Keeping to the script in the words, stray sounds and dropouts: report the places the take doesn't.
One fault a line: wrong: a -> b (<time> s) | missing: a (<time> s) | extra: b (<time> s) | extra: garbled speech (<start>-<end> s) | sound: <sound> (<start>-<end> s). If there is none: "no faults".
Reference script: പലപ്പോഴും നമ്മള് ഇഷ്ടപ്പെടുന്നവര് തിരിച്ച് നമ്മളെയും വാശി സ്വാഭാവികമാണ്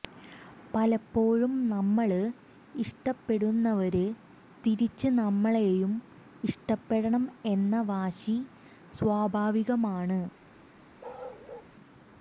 extra: ഇഷ്ടപ്പെടണം എന്ന (6.4 s)
sound: bark (11.0-11.7 s)